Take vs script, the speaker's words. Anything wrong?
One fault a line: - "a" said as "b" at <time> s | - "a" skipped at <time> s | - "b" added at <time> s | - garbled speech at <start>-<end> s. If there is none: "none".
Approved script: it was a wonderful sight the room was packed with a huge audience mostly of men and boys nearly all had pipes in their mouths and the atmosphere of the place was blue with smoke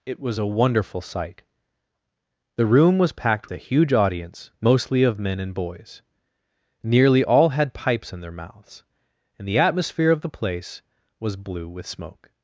- "with" skipped at 3.5 s